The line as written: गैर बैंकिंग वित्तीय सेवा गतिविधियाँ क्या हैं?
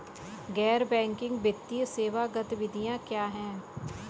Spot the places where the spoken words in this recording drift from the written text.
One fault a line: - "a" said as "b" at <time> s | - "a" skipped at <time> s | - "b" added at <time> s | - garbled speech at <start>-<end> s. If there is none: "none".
none